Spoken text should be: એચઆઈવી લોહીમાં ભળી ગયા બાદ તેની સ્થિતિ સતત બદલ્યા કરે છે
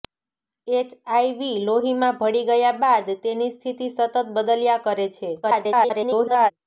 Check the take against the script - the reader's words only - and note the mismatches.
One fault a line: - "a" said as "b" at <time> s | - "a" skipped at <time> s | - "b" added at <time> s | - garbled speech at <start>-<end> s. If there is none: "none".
- garbled speech at 5.4-6.5 s